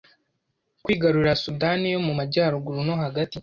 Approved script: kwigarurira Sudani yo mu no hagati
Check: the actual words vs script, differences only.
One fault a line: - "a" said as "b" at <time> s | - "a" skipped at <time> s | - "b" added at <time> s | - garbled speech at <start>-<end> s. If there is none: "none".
- "majyaruguru" added at 2.2 s